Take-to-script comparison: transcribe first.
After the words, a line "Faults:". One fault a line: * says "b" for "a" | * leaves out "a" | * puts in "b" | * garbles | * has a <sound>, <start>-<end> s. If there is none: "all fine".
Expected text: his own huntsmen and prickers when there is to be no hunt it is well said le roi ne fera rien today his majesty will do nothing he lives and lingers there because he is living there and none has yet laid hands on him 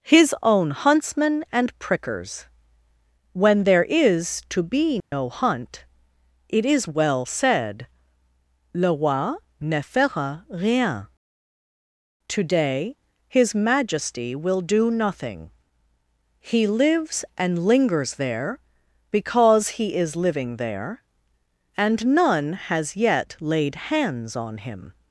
his own huntsmen and prickers when there is to be no hunt it is well said le roi ne fera rien today his majesty will do nothing he lives and lingers there because he is living there and none has yet laid hands on him
Faults:
* has a dropout, 5.0-5.1 s